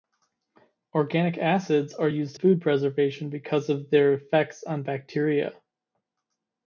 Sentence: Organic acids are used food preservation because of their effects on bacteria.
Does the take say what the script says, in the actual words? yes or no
yes